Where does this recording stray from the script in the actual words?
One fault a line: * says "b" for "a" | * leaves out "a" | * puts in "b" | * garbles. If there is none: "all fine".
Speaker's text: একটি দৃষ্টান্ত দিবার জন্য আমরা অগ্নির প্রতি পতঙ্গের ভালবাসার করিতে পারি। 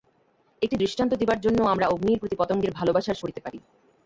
all fine